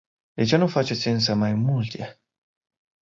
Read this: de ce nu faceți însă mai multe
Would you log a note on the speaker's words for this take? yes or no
no